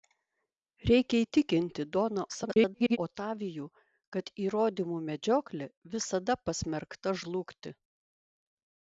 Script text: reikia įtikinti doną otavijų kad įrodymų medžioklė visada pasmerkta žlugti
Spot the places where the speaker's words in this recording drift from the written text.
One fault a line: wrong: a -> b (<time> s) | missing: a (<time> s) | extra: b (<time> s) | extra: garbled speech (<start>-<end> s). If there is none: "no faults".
extra: garbled speech (2.3-3.0 s)